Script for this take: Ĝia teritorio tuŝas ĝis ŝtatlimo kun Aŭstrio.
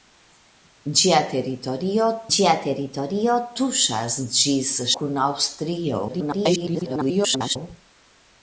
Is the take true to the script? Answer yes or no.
no